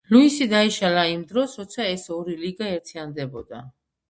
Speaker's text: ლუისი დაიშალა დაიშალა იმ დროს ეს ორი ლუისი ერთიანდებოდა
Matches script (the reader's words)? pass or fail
fail